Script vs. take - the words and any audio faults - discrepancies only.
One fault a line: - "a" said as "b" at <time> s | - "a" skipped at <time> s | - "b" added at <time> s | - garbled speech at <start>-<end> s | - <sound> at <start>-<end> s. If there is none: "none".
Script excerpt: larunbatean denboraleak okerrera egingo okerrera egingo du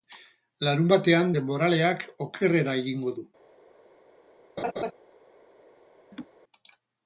- "okerrera egingo" skipped at 3.2 s
- laugh at 4.6-4.9 s
- laugh at 6.1-6.3 s